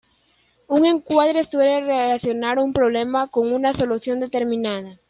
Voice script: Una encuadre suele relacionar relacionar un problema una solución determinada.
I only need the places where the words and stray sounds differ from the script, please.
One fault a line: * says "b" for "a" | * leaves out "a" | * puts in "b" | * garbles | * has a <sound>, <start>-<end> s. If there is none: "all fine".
* says "Un" for "Una"
* leaves out "relacionar"
* puts in "con"